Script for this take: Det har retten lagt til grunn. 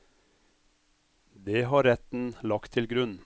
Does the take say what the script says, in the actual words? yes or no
yes